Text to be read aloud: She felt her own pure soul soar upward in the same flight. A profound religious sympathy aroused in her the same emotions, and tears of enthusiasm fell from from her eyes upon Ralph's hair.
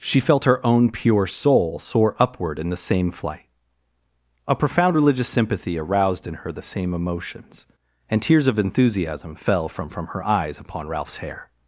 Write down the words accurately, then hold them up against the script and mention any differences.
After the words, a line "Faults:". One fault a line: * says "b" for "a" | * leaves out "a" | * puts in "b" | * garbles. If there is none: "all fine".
She felt her own pure soul soar upward in the same flight. A profound religious sympathy aroused in her the same emotions, and tears of enthusiasm fell from from her eyes upon Ralph's hair.
Faults:
all fine